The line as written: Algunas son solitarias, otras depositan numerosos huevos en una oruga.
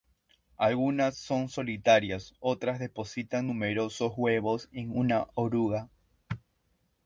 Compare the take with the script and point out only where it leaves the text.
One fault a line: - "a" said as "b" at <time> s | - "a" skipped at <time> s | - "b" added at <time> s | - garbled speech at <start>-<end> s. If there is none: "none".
none